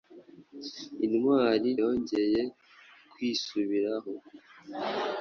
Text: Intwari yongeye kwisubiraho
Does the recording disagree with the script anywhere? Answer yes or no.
no